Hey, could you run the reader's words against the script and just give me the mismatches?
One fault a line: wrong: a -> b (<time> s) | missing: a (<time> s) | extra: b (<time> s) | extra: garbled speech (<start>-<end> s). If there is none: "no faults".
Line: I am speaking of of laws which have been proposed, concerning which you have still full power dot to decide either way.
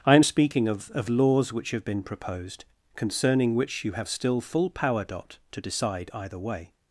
no faults